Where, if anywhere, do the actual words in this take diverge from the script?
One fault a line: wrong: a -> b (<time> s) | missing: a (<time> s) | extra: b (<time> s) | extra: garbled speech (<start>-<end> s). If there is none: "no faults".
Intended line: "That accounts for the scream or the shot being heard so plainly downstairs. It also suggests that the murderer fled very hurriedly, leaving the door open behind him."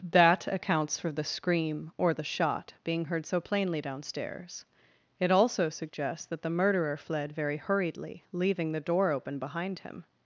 no faults